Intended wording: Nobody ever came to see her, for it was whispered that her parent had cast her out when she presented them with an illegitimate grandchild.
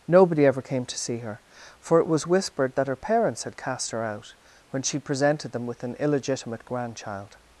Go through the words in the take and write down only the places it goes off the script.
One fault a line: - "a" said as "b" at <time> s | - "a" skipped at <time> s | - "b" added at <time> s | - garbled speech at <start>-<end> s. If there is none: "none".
- "parent" said as "parents" at 3.0 s